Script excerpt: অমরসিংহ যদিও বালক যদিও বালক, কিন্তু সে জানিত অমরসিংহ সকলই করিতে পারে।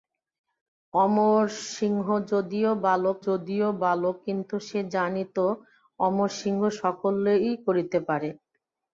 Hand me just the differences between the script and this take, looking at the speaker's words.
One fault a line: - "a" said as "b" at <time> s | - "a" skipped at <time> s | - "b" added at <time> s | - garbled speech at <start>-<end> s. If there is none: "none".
none